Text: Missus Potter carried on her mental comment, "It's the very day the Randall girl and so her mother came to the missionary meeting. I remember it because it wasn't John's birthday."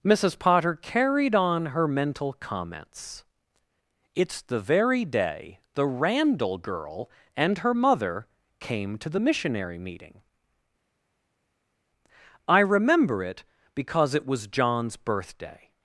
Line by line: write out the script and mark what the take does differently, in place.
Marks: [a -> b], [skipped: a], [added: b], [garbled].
Missus Potter carried on her mental [comment, -> comments] "It's the very day the Randall girl and [skipped: so] her mother came to the missionary meeting. I remember it because it [wasn't -> was] John's birthday."